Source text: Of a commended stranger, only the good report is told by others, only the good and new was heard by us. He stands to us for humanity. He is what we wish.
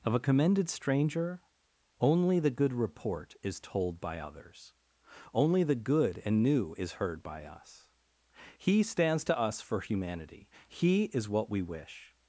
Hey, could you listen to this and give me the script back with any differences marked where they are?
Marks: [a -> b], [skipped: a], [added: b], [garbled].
Of a commended stranger, only the good report is told by others, only the good and new [was -> is] heard by us. He stands to us for humanity. He is what we wish.